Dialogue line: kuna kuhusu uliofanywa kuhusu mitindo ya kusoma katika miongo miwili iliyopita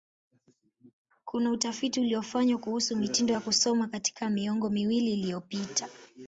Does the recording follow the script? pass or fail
fail